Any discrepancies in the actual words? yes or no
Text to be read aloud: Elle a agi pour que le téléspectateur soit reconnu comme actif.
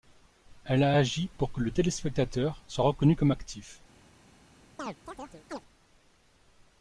no